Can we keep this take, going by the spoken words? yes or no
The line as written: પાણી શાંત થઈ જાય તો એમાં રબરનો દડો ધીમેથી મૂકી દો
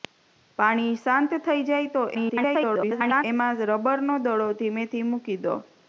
no